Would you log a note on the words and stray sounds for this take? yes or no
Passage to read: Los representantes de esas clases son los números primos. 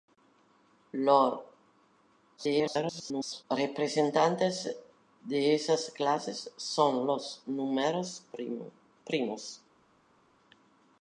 yes